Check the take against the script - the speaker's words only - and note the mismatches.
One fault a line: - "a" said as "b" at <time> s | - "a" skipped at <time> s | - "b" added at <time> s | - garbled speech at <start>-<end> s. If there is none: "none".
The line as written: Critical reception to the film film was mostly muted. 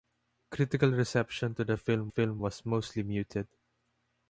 none